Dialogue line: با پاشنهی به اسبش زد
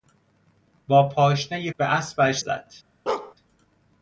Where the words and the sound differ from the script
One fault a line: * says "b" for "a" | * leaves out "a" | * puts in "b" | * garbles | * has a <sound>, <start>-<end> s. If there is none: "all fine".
* has a bark, 3.1-3.3 s